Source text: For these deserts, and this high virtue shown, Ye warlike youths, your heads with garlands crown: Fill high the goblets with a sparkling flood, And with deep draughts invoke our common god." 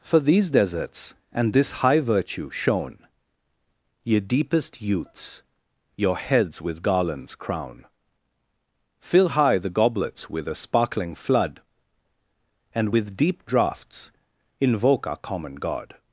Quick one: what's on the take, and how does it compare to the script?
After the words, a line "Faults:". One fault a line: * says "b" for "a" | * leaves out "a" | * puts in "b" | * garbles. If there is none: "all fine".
For these deserts, and this high virtue shown, Ye deepest youths, your heads with garlands crown: Fill high the goblets with a sparkling flood, And with deep draughts invoke our common god."
Faults:
* says "deepest" for "warlike"